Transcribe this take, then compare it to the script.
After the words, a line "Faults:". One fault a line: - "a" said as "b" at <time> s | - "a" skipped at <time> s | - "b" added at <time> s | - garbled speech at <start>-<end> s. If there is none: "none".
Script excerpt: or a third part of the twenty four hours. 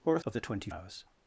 or a of the twenty hours.
Faults:
- "third part" skipped at 0.2 s
- "four" skipped at 0.7 s